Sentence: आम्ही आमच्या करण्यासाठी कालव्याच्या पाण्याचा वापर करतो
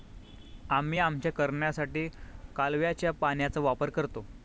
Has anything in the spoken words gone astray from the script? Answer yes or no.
no